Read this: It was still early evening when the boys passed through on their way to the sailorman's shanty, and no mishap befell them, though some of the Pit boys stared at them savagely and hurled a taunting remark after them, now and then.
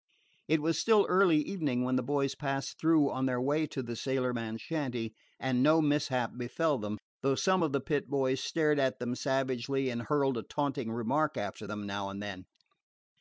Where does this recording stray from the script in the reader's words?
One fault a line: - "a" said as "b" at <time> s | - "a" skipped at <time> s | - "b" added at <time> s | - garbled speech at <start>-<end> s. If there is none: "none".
none